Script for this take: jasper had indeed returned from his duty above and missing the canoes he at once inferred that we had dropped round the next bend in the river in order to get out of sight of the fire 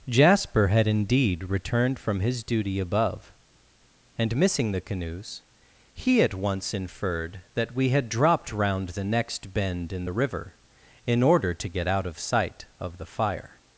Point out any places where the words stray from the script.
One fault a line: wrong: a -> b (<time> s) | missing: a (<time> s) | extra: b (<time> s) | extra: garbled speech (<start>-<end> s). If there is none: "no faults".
no faults